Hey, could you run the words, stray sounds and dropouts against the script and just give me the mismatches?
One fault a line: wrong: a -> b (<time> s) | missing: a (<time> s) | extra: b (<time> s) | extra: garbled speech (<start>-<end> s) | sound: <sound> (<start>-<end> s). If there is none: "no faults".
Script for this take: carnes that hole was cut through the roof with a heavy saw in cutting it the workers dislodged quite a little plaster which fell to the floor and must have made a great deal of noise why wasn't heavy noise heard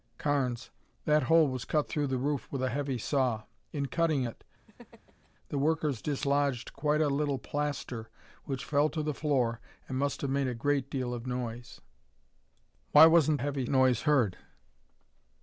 sound: laugh (4.7-5.3 s)